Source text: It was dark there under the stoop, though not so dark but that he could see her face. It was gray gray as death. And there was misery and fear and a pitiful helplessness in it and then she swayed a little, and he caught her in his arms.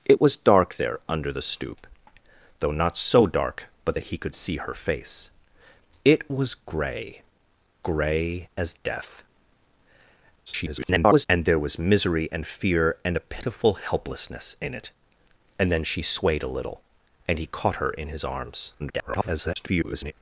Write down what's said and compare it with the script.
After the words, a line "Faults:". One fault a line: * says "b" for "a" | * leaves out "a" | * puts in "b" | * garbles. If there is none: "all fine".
It was dark there under the stoop, though not so dark but that he could see her face. It was gray gray as death. [garbled] And there was misery and fear and a pitiful helplessness in it and then she swayed a little, and he caught her in his arms. [garbled]
Faults:
* garbles
* garbles